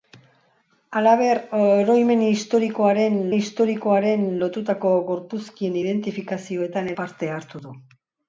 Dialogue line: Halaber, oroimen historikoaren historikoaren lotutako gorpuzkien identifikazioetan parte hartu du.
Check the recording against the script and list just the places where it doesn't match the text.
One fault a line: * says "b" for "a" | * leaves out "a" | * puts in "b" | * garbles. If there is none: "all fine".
all fine